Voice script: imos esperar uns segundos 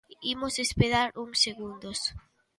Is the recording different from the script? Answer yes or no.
no